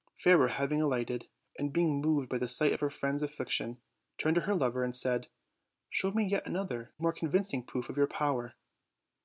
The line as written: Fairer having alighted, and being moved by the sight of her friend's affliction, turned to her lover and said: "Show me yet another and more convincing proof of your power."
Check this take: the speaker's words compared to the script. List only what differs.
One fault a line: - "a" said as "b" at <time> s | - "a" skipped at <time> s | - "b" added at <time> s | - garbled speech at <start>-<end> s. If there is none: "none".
- "and" skipped at 6.9 s